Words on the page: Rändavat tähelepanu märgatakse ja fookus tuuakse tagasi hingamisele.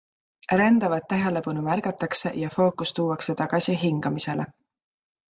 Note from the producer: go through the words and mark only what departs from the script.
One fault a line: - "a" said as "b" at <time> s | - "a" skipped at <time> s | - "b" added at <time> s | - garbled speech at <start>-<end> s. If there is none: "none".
none